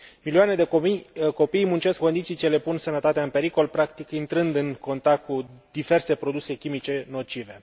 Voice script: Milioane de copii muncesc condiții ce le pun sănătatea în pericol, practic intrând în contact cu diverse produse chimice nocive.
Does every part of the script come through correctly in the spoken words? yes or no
yes